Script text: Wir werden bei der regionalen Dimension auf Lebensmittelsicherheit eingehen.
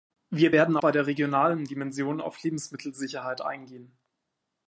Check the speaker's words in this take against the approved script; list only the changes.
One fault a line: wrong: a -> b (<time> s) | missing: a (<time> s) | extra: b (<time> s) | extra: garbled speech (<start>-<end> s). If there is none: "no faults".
no faults